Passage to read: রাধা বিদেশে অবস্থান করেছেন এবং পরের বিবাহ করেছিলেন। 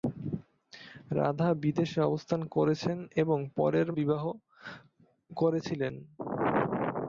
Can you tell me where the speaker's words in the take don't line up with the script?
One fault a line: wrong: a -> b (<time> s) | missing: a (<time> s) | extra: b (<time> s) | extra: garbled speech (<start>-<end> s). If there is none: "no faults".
no faults